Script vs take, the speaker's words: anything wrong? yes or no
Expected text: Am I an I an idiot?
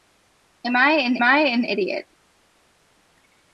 no